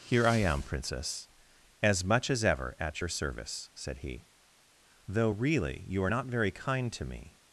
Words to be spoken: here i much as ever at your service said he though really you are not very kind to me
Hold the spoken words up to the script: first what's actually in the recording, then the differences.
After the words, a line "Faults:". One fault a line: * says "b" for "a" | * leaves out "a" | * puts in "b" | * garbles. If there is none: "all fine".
here i am princess as much as ever at your service said he though really you are not very kind to me
Faults:
* puts in "am princess as"